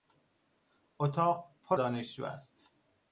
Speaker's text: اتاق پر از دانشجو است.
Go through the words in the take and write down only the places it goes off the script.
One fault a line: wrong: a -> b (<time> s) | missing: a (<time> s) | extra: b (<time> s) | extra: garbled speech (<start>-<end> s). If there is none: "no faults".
missing: از (1.8 s)